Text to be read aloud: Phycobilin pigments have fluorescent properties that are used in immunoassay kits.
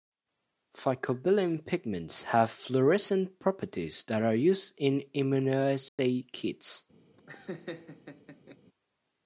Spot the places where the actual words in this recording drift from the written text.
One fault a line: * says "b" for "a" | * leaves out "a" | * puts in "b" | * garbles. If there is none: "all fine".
all fine